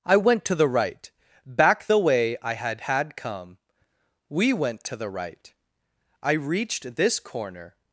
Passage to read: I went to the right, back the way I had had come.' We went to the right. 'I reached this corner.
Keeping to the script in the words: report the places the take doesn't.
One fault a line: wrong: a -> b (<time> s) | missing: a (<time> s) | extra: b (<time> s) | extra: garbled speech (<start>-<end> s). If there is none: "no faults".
no faults